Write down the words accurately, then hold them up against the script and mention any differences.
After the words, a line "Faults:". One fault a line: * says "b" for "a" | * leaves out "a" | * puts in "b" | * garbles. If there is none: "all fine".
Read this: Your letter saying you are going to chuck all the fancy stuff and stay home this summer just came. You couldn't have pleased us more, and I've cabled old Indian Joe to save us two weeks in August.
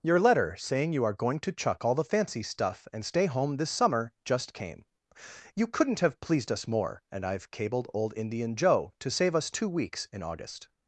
Your letter saying you are going to chuck all the fancy stuff and stay home this summer just came. You couldn't have pleased us more, and I've cabled old Indian Joe to save us two weeks in August.
Faults:
all fine